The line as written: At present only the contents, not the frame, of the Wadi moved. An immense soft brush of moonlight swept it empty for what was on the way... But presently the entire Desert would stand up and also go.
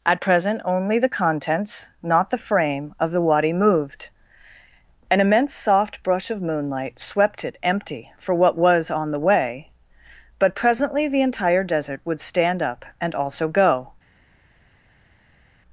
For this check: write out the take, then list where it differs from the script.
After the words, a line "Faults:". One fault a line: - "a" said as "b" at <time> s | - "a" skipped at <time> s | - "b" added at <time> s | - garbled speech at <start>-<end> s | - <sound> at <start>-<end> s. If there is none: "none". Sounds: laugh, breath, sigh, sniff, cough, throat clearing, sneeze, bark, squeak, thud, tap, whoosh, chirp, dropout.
At present only the contents, not the frame, of the Wadi moved. An immense soft brush of moonlight swept it empty for what was on the way... But presently the entire Desert would stand up and also go.
Faults:
none